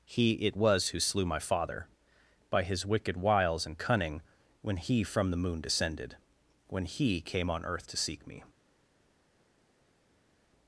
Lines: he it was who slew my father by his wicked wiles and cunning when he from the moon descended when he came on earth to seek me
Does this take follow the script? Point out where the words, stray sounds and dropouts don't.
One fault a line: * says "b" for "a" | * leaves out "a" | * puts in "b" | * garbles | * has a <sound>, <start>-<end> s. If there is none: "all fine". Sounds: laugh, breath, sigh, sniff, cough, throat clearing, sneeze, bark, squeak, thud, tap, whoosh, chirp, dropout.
all fine